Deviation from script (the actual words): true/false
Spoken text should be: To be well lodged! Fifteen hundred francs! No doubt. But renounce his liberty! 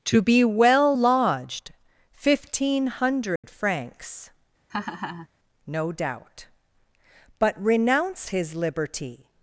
false